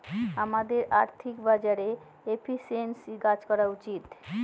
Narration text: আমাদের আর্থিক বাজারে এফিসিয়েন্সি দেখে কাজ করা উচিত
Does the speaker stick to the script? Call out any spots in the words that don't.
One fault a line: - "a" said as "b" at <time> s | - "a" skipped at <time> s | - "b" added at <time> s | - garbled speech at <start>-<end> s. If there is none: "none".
- "দেখে" skipped at 3.1 s